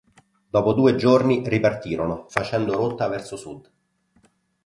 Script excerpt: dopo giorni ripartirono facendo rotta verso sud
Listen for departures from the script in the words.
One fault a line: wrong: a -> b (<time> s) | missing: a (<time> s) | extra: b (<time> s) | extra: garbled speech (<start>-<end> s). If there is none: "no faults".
extra: due (0.7 s)